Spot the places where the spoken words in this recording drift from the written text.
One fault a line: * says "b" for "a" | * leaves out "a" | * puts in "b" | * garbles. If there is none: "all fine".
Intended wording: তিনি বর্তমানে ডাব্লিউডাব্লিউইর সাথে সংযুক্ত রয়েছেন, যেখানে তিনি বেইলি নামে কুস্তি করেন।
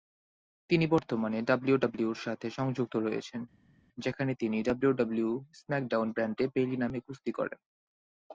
* puts in "ডাব্লিউডাব্লিউই স্ম্যাকডাউন ব্র্যান্ডে"